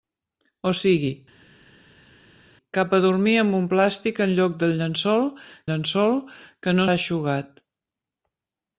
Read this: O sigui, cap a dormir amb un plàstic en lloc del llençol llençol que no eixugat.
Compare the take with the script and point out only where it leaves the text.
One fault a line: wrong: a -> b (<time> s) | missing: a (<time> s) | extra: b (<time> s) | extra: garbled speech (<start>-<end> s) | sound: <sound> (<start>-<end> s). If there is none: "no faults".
no faults